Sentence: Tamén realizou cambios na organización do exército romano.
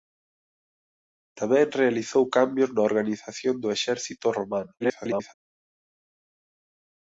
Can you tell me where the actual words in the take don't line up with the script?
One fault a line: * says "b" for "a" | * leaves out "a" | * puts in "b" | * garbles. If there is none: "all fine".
* garbles